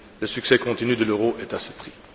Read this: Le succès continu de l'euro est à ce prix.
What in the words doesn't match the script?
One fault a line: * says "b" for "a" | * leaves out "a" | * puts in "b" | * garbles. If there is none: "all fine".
all fine